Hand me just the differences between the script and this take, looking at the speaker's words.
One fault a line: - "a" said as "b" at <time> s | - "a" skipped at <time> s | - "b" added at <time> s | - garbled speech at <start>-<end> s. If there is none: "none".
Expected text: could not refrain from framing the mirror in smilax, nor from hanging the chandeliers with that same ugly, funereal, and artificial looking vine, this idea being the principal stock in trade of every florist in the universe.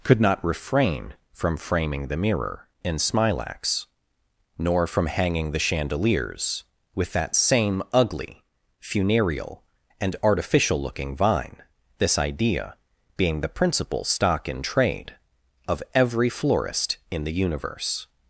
none